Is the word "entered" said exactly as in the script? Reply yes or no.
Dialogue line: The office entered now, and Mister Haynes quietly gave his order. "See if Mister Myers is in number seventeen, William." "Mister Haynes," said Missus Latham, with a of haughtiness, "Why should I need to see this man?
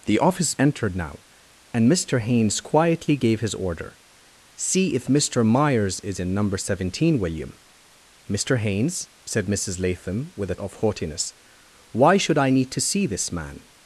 yes